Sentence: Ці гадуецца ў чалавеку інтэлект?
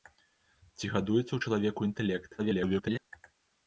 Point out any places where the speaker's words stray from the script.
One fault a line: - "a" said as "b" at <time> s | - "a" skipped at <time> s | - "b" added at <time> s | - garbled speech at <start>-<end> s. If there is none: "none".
- garbled speech at 2.4-3.0 s